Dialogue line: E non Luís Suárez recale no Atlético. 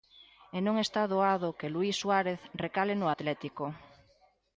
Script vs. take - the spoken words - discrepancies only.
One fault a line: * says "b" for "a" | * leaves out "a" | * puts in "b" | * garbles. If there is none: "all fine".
* puts in "está doado que"